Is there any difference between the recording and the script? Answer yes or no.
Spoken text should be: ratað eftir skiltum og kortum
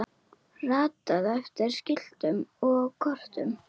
no